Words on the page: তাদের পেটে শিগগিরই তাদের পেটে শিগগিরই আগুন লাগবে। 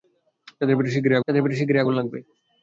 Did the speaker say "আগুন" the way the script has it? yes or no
yes